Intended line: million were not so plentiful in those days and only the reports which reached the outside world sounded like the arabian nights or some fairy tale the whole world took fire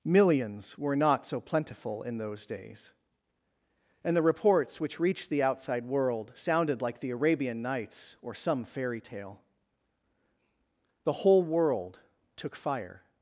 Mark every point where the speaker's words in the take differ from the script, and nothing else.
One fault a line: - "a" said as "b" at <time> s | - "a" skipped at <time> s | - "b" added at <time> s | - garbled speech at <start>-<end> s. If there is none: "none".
- "million" said as "millions" at 0.0 s
- "only" skipped at 4.2 s